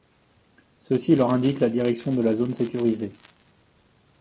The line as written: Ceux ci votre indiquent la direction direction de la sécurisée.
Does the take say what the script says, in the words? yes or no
no